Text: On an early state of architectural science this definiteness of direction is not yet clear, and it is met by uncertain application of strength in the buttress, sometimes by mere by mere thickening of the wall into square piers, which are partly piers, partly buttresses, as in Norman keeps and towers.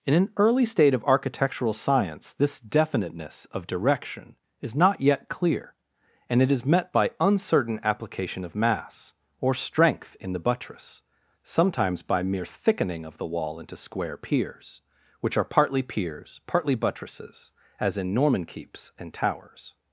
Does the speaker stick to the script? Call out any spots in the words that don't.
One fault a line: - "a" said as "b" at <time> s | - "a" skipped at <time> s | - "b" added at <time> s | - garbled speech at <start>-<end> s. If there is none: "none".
- "On" said as "In" at 0.0 s
- "mass or" added at 8.5 s
- "by mere" skipped at 12.4 s